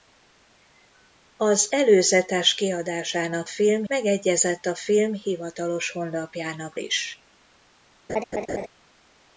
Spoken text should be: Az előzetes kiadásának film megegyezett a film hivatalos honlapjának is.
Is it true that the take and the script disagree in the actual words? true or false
false